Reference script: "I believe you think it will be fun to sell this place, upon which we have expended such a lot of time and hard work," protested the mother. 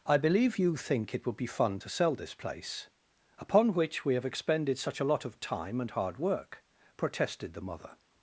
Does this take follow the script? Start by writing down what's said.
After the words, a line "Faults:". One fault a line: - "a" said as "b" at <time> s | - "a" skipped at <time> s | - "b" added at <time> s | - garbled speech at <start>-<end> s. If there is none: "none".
"I believe you think it would be fun to sell this place, upon which we have expended such a lot of time and hard work," protested the mother.
Faults:
- "will" said as "would" at 1.2 s